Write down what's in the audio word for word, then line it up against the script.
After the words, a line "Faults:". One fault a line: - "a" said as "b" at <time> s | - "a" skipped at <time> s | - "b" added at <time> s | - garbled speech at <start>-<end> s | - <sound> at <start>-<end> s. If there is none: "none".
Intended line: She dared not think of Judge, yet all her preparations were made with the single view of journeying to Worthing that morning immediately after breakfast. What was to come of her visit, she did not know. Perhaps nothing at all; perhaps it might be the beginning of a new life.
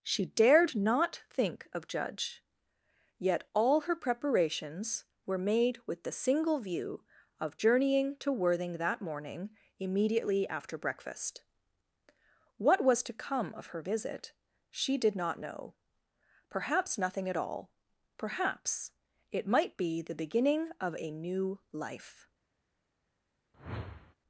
She dared not think of Judge, yet all her preparations were made with the single view of journeying to Worthing that morning immediately after breakfast. What was to come of her visit, she did not know. Perhaps nothing at all; perhaps it might be the beginning of a new life.
Faults:
- whoosh at 23.5-24.1 s